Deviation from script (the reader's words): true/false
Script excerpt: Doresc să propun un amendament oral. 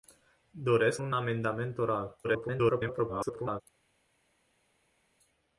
true